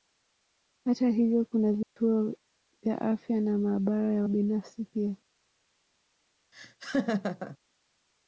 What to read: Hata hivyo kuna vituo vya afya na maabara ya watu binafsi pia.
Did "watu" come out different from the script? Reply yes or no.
yes